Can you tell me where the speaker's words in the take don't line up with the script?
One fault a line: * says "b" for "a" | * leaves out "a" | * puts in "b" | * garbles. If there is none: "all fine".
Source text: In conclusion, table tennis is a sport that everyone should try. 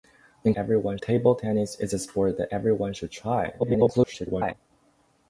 * says "everyone" for "conclusion"
* garbles